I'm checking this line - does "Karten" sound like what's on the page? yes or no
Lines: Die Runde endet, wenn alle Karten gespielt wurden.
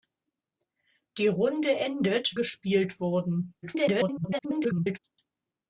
no